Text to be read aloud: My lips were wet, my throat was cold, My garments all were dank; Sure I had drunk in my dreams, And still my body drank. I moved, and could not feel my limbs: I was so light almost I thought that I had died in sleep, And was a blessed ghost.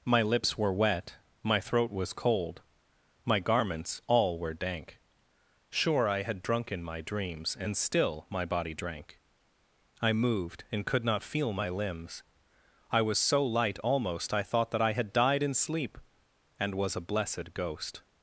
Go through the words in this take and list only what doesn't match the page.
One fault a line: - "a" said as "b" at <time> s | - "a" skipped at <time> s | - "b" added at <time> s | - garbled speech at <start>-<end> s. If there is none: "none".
none